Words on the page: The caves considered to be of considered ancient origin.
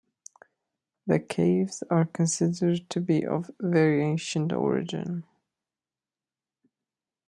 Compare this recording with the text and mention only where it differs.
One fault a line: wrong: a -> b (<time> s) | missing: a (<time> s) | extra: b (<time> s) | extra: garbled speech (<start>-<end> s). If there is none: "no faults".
extra: are (1.9 s)
wrong: considered -> very (3.6 s)